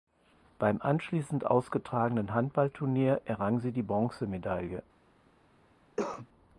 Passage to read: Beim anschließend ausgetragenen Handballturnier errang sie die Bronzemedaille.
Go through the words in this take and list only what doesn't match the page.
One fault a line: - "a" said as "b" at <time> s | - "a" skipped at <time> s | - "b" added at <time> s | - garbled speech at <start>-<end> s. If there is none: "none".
none